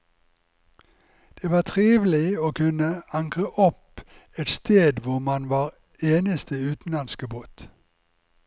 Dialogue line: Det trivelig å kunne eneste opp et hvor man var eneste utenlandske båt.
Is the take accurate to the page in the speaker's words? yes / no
no